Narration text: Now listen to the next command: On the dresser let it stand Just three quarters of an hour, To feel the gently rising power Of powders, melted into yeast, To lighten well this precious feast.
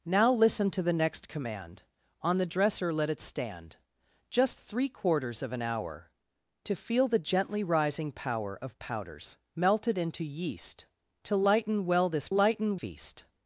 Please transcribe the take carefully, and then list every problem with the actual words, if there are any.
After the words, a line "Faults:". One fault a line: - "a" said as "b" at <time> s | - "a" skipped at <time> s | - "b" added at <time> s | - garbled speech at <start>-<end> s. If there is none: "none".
Now listen to the next command: On the dresser let it stand Just three quarters of an hour, To feel the gently rising power Of powders, melted into yeast, To lighten well this lighten feast.
Faults:
- "precious" said as "lighten" at 12.3 s